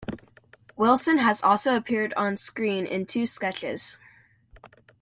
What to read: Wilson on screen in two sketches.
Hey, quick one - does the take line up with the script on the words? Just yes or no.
no